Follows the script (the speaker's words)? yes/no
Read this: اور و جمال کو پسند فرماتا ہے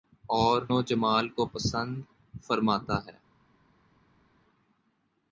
yes